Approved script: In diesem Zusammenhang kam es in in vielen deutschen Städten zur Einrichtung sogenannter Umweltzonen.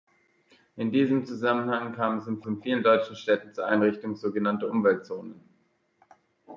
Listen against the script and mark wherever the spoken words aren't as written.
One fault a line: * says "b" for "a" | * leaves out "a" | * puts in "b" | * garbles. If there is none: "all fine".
all fine